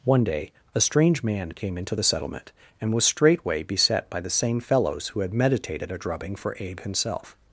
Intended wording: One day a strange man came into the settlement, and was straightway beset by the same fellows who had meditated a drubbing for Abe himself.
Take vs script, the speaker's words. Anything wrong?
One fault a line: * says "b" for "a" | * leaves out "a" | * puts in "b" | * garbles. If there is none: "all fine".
all fine